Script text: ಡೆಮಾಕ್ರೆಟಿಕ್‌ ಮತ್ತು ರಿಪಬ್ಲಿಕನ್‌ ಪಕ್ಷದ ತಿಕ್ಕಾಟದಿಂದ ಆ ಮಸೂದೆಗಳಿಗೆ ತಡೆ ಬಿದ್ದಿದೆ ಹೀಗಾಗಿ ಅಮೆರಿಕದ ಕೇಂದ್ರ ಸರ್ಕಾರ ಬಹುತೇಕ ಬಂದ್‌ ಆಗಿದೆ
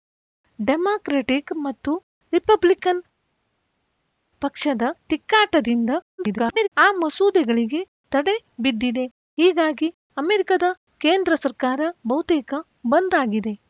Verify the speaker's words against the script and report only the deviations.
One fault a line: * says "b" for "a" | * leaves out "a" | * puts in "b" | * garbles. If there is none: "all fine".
* garbles